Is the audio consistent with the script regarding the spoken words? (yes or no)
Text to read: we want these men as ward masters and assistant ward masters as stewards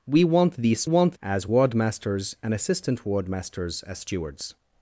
no